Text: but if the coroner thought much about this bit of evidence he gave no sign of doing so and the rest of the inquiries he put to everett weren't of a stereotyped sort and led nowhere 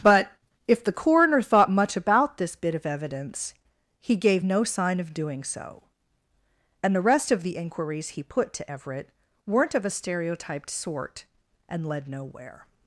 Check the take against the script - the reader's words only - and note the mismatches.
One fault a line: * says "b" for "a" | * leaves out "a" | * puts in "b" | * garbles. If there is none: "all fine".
all fine